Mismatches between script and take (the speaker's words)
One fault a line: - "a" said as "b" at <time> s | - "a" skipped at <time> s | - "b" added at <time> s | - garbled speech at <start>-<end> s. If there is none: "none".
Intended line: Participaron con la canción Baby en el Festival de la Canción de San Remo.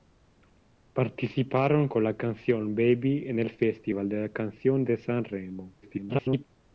- garbled speech at 5.8-6.5 s